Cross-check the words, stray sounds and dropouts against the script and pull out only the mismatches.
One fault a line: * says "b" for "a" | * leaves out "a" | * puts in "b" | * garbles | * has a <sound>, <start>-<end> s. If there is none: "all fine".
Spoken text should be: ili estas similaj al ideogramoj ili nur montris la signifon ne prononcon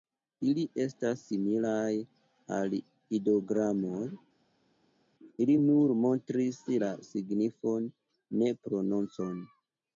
all fine